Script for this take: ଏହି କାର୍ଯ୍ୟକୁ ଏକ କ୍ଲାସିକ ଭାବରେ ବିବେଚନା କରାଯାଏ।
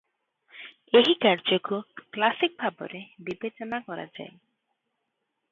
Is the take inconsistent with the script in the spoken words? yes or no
yes